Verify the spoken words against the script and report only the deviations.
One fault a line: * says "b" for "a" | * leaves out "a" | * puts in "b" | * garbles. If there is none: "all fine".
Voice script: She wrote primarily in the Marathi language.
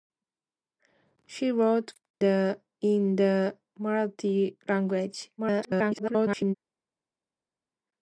* says "the" for "primarily"
* garbles